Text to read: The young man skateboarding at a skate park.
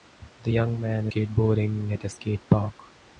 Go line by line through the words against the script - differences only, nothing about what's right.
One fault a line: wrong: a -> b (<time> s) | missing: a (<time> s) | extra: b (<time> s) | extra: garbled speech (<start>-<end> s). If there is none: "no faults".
no faults